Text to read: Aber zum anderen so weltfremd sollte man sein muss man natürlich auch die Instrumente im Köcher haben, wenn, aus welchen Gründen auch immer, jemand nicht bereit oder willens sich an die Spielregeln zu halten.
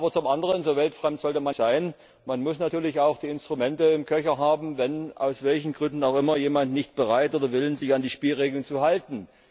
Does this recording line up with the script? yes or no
yes